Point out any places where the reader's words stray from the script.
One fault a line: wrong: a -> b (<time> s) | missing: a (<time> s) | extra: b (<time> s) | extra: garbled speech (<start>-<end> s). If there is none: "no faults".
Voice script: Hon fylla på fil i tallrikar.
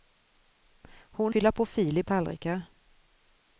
no faults